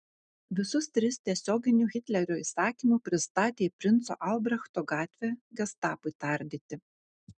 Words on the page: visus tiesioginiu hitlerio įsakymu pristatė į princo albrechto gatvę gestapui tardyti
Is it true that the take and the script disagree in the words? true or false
true